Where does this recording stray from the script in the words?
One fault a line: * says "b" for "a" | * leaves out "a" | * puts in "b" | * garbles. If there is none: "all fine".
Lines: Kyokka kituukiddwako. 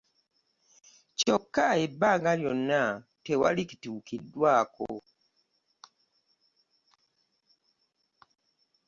* puts in "ebbanga lyonna tewali"